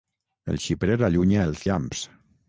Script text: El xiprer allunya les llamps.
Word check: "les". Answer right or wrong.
wrong